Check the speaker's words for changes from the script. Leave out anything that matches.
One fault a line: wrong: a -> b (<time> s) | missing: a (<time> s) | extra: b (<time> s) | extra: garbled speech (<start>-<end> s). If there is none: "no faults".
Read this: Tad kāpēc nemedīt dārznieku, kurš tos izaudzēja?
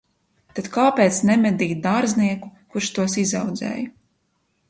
no faults